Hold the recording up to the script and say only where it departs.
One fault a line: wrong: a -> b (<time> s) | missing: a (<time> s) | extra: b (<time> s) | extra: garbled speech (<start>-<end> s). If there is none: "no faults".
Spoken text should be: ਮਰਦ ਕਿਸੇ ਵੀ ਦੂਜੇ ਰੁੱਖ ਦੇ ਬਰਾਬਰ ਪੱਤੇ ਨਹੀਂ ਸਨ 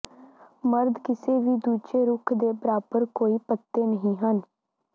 extra: ਕੋਈ (3.1 s)
wrong: ਸਨ -> ਹਨ (4.2 s)